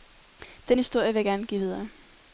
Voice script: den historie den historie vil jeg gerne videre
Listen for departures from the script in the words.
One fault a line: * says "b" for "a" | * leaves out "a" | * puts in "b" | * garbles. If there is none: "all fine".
* leaves out "den historie"
* puts in "give"